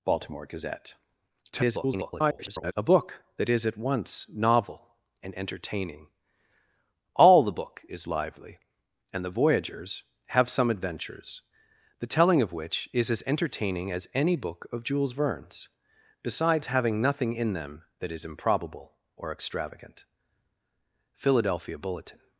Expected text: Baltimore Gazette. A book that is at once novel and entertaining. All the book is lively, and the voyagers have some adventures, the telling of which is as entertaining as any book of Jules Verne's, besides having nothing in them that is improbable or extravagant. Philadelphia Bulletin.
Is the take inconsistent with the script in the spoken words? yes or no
yes